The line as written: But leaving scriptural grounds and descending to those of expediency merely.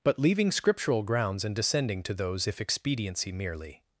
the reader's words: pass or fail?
fail